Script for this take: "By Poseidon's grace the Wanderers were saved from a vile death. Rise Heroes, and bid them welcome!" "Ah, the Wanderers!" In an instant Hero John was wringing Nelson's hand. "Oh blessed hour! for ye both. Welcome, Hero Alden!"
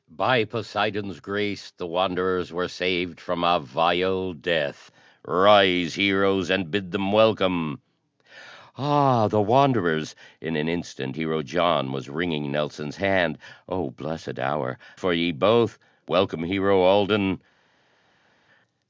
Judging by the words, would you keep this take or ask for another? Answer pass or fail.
pass